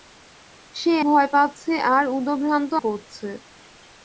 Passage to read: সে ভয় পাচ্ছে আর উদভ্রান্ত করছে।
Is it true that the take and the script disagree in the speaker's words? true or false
false